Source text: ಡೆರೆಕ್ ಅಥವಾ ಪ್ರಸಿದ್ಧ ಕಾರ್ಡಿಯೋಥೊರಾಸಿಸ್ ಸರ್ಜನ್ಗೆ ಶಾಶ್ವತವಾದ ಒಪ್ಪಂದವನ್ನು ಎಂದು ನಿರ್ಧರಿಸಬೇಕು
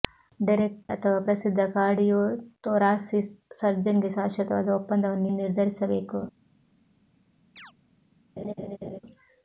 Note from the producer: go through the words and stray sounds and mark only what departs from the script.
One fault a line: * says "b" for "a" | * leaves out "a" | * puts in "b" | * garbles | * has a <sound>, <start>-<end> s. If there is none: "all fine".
* has a chirp, 7.6-7.7 s
* has a laugh, 8.4-9.0 s